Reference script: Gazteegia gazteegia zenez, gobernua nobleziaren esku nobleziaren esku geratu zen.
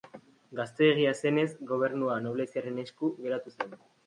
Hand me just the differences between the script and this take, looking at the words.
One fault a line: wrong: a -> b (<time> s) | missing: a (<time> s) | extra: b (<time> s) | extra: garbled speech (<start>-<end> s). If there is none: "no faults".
missing: gazteegia (1.1 s)
missing: nobleziaren esku (3.1 s)